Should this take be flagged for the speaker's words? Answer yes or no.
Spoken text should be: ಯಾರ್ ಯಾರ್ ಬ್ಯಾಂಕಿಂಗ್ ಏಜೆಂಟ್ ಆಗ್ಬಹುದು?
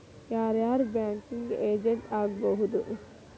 no